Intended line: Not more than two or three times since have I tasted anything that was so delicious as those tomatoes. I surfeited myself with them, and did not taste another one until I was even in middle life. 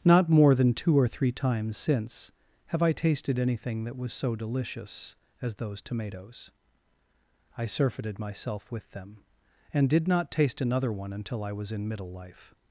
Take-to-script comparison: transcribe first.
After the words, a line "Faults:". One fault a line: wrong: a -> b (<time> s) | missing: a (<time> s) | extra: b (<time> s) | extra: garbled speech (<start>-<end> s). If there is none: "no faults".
Not more than two or three times since have I tasted anything that was so delicious as those tomatoes. I surfeited myself with them, and did not taste another one until I was in middle life.
Faults:
missing: even (11.7 s)